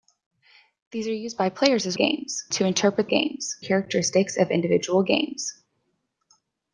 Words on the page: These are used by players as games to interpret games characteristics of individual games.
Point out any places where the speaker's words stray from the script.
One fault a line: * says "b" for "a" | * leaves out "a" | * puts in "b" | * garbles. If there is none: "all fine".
all fine